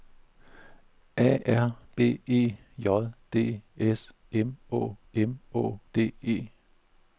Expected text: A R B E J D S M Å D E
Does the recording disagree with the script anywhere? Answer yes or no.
yes